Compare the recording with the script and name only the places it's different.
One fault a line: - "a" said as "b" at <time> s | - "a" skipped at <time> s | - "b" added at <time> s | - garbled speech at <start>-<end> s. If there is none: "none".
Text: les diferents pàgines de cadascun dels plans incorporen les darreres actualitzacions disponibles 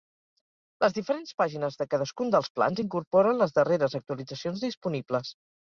none